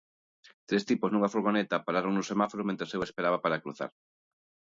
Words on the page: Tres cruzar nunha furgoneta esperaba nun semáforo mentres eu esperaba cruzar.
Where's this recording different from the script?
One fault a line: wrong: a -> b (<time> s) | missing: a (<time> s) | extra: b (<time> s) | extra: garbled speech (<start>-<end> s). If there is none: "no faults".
wrong: cruzar -> tipos (0.9 s)
wrong: esperaba -> pararon (1.9 s)
extra: para (3.4 s)